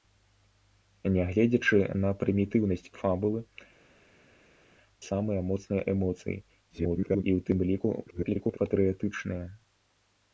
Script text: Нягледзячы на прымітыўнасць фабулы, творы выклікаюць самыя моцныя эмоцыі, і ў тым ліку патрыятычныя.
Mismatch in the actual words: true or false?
true